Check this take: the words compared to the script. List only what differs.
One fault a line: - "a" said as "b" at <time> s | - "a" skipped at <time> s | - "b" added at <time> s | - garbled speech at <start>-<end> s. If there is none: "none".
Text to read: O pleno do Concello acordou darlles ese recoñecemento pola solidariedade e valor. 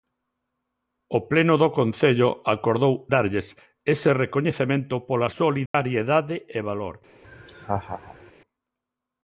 none